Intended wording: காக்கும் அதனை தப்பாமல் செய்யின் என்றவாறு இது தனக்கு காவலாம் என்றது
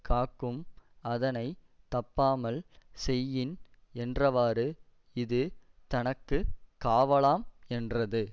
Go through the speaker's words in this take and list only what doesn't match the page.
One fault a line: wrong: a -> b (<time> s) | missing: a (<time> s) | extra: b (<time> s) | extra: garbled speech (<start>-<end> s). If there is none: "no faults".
no faults